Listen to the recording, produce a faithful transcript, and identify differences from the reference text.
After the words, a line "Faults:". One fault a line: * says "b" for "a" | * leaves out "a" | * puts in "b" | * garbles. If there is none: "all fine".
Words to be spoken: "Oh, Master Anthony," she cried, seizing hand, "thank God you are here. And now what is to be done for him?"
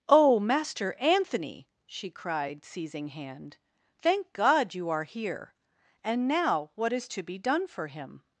"Oh, Master Anthony," she cried, seizing hand, "thank God you are here. And now what is to be done for him?"
Faults:
all fine